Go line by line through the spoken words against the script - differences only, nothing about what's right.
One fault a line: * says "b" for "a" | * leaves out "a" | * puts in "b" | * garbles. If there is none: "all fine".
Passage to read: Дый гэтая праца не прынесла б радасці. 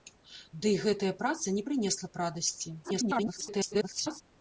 * garbles